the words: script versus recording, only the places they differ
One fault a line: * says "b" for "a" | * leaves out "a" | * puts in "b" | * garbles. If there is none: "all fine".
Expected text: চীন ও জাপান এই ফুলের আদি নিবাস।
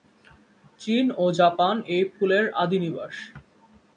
all fine